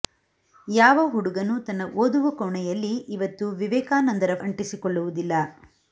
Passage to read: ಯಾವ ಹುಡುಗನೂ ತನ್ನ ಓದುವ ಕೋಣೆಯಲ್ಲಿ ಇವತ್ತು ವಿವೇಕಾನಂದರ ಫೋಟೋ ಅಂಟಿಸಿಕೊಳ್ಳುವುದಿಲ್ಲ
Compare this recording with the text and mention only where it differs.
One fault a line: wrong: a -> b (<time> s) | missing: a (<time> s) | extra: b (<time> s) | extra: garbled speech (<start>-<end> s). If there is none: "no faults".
missing: ಫೋಟೋ (4.3 s)